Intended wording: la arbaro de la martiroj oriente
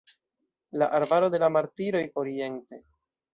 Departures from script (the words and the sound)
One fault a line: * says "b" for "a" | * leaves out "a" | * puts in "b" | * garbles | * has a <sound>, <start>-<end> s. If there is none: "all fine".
all fine